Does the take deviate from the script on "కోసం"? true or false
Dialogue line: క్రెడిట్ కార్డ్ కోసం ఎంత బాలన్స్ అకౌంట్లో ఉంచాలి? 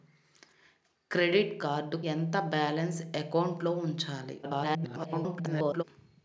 true